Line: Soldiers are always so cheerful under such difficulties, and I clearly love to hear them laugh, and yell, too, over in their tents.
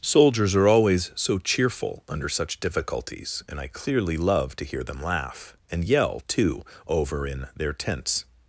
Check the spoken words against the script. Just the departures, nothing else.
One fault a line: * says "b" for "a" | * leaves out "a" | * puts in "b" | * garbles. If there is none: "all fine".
all fine